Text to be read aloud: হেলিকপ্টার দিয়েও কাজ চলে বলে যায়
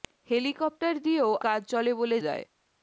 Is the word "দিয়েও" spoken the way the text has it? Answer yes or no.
yes